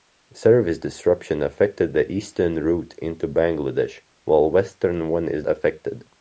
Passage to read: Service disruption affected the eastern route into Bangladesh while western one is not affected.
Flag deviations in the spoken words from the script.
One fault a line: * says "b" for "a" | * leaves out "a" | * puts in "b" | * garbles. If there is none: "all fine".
* leaves out "not"